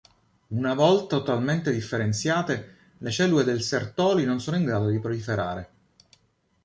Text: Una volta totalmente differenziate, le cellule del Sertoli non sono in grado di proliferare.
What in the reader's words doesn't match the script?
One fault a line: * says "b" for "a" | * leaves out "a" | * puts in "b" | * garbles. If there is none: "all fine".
all fine